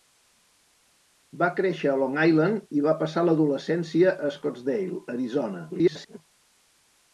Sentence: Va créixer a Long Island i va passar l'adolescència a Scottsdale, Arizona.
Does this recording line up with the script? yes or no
no